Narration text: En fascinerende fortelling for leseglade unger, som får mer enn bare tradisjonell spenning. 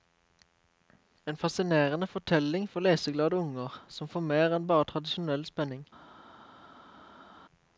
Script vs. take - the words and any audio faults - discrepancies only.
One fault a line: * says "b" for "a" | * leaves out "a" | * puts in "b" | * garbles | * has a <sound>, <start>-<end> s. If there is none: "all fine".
all fine